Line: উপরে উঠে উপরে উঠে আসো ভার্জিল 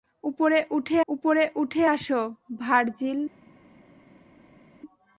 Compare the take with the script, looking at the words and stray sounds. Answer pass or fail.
pass